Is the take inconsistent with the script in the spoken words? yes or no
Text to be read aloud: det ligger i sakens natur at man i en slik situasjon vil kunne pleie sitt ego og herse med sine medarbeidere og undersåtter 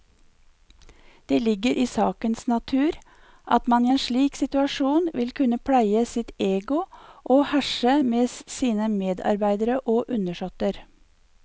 no